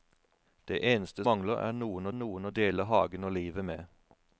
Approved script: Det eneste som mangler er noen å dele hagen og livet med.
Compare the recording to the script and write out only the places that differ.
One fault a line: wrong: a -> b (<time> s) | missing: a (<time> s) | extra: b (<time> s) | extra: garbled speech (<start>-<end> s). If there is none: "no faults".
missing: som (1.2 s)
extra: noen (2.2 s)